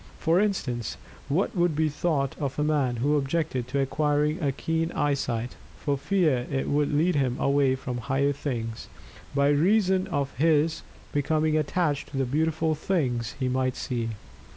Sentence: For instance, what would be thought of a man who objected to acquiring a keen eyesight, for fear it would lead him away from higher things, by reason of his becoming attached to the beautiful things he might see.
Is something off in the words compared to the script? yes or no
no